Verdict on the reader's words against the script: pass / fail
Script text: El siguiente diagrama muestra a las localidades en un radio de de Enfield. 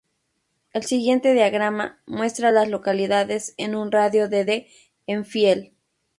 pass